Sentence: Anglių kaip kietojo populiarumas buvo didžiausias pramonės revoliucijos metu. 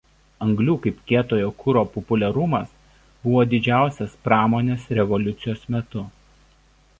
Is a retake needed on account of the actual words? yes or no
yes